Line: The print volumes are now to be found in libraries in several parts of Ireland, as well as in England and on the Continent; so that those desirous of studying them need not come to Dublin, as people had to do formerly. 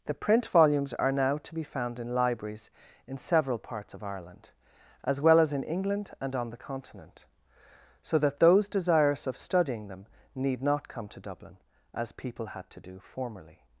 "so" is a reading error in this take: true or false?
false